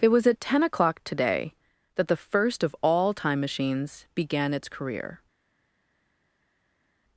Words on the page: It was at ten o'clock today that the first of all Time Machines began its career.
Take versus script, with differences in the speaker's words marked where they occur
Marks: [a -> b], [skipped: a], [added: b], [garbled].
It was at ten o'clock today that the first of all Time Machines began its career.